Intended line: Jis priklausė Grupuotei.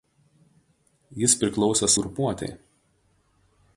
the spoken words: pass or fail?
pass